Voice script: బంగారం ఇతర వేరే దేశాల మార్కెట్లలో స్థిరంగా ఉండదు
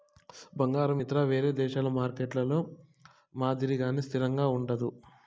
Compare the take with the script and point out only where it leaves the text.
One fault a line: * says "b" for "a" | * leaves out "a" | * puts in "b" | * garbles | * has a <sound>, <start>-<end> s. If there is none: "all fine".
* puts in "మాదిరిగానే"